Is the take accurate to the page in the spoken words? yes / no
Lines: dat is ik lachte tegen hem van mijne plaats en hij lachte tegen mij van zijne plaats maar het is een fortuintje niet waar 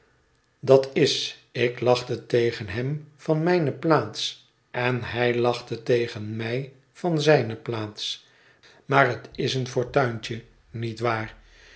yes